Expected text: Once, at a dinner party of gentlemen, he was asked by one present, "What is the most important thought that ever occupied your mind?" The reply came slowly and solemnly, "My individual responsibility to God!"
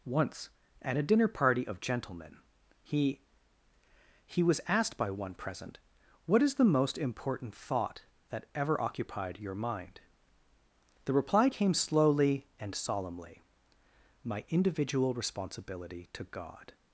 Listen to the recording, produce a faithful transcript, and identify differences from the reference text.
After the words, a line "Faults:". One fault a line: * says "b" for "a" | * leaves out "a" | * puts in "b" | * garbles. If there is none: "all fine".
Once, at a dinner party of gentlemen, he he was asked by one present, "What is the most important thought that ever occupied your mind?" The reply came slowly and solemnly, "My individual responsibility to God!"
Faults:
* puts in "he"